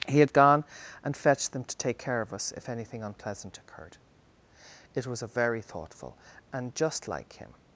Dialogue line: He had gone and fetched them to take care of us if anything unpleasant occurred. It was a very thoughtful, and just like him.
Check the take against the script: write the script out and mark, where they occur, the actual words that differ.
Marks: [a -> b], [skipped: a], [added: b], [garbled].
He had gone and fetched them to take care of us if anything unpleasant occurred. It was a very thoughtful, and just like him.